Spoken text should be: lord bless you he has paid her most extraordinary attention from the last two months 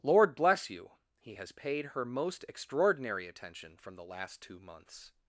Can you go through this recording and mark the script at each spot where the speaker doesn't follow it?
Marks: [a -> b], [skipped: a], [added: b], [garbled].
lord bless you he has paid her most extraordinary attention from the last two months